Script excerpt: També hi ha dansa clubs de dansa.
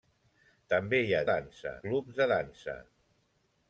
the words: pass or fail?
pass